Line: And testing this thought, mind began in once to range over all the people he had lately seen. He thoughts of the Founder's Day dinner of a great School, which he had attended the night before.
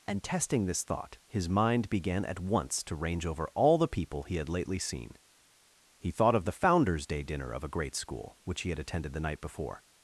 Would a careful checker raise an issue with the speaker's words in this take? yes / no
yes